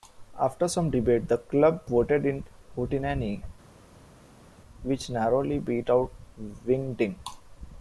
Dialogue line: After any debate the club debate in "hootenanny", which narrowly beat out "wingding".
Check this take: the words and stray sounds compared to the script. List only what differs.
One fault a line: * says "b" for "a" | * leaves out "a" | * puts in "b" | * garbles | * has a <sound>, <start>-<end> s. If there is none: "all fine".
* says "some" for "any"
* says "voted" for "debate"